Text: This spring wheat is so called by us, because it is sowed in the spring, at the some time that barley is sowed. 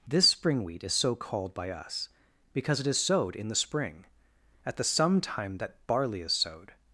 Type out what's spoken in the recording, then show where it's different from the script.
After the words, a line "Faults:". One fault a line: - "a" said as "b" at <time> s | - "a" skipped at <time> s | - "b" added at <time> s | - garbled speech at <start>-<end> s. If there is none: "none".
This spring wheat is so called by us, because it is sowed in the spring, at the some time that barley is sowed.
Faults:
none